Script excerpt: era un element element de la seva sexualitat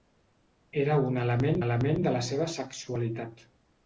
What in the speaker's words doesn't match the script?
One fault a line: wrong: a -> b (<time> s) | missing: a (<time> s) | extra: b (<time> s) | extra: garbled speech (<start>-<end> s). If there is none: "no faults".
no faults